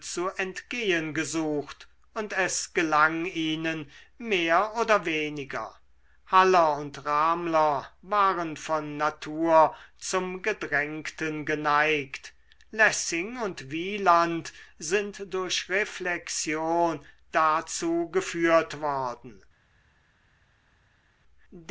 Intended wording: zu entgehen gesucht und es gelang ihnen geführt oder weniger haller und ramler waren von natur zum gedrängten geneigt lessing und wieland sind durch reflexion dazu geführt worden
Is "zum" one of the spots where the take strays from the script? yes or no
no